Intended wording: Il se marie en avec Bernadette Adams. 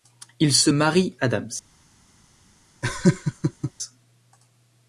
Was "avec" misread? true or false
true